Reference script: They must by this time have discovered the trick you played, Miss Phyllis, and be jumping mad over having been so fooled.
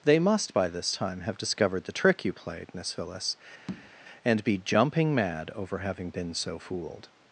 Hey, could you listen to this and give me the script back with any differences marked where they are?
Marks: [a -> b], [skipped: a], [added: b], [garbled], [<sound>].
They must by this time have discovered the trick you played, Miss Phyllis, [tap] and be jumping mad over having been so fooled.